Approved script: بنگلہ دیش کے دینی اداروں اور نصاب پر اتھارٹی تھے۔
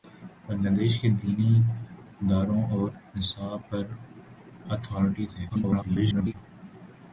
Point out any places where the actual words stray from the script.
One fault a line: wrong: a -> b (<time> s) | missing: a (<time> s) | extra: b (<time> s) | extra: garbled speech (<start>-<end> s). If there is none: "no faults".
extra: garbled speech (5.5-6.3 s)